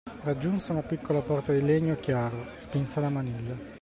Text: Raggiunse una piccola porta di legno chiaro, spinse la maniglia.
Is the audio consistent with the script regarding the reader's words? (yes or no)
yes